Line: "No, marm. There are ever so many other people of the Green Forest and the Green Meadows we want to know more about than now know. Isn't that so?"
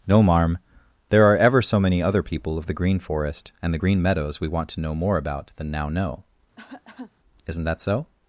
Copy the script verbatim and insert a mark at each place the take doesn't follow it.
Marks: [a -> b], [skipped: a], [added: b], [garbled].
"No, marm. There are ever so many other people of the Green Forest and the Green Meadows we want to know more about than now know. Isn't that so?"